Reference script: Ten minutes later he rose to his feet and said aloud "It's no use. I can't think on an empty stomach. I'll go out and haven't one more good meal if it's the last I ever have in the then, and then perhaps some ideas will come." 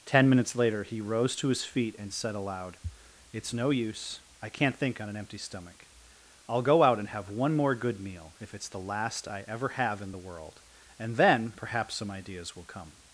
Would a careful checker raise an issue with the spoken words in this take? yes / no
yes